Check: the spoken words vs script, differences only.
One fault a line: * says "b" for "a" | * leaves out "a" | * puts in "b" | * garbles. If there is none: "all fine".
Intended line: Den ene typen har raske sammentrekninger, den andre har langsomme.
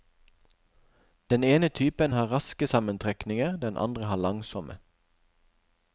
all fine